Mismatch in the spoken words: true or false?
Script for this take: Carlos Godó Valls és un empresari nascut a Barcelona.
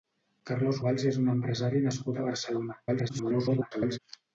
true